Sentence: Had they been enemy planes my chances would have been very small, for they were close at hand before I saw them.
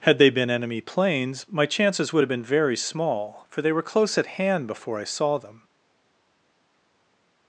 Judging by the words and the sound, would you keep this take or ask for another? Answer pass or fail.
pass